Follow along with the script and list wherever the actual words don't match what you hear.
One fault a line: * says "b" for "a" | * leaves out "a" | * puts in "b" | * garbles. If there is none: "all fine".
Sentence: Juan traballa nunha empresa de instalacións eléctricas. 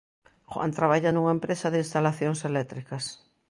all fine